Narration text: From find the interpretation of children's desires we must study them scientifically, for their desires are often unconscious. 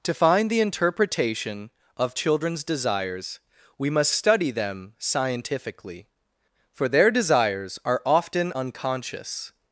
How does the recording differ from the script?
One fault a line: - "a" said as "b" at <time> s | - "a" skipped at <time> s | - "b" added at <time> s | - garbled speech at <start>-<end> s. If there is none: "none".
- "From" said as "To" at 0.0 s